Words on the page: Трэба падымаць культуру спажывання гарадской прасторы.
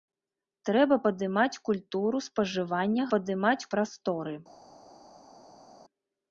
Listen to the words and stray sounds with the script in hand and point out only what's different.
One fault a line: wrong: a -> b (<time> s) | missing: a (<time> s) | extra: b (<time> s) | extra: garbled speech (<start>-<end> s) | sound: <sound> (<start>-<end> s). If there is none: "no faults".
wrong: гарадской -> падымаць (3.1 s)